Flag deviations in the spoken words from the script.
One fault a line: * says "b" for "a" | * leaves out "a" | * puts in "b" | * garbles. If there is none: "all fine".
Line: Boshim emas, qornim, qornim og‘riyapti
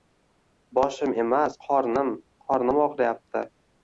all fine